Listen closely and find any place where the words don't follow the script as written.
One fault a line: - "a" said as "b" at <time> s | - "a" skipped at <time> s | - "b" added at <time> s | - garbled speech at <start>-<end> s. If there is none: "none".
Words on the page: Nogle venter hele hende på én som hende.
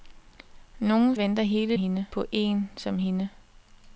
none